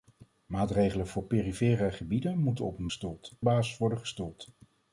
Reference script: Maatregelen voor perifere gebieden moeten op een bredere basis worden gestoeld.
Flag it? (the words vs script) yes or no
yes